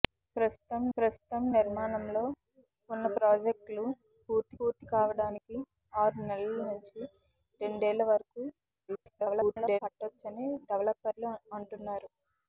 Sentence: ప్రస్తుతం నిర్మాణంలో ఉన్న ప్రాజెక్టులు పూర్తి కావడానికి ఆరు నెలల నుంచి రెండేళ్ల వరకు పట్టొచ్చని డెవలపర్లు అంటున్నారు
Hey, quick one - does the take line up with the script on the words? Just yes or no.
no